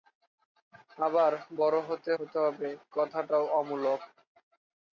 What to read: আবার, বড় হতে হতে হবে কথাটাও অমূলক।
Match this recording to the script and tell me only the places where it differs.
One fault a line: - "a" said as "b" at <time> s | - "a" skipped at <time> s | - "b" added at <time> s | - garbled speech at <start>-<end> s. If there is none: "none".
none